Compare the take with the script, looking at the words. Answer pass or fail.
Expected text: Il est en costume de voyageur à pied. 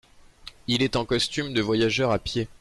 pass